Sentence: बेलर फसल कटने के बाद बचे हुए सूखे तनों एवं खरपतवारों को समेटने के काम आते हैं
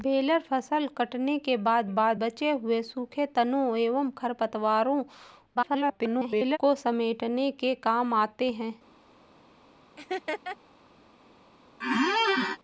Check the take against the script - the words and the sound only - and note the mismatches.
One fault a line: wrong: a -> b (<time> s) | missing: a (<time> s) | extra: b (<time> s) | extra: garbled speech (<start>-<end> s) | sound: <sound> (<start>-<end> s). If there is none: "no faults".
extra: बाद (1.9 s)
extra: garbled speech (5.5-6.6 s)
sound: laugh (10.0-10.6 s)
sound: squeak (11.8-12.6 s)